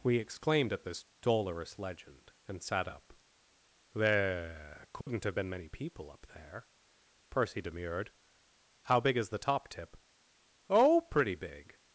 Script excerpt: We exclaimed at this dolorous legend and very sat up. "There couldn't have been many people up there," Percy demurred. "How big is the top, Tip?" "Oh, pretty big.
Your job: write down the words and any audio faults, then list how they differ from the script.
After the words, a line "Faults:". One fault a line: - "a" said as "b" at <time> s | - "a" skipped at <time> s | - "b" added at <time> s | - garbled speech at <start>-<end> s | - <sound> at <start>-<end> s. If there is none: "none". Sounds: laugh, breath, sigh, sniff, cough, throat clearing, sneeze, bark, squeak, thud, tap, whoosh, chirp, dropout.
We exclaimed at this dolorous legend and sat up. "There couldn't have been many people up there," Percy demurred. "How big is the top, Tip?" "Oh, pretty big.
Faults:
- "very" skipped at 2.6 s
- dropout at 5.0-5.1 s